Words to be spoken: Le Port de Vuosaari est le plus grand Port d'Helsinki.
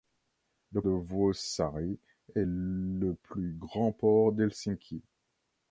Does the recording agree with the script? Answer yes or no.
no